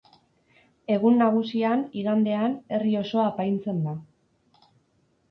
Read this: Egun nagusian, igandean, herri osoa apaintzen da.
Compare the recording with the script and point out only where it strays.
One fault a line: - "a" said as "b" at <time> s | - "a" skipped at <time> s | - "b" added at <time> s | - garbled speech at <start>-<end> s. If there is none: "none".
none